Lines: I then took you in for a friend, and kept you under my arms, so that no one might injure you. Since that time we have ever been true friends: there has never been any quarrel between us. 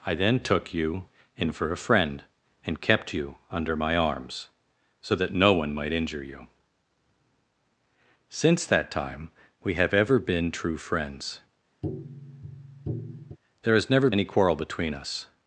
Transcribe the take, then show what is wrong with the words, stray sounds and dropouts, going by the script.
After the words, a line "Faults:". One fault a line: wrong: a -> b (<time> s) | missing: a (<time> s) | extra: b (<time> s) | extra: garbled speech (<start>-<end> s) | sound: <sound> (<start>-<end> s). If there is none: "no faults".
I then took you in for a friend, and kept you under my arms, so that no one might injure you. Since that time we have ever been true friends: there has never any quarrel between us.
Faults:
sound: tap (11.8-13.4 s)
missing: been (14.1 s)